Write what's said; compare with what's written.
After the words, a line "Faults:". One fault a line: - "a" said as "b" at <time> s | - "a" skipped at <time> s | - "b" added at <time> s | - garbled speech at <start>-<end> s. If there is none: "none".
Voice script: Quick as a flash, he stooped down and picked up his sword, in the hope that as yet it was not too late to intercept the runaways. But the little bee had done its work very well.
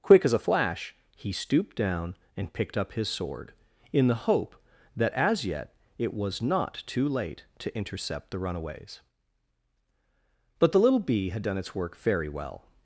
Quick as a flash, he stooped down and picked up his sword, in the hope that as yet it was not too late to intercept the runaways. But the little bee had done its work very well.
Faults:
none